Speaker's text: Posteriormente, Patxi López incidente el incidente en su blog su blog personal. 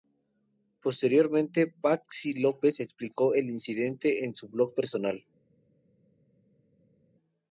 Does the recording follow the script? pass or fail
fail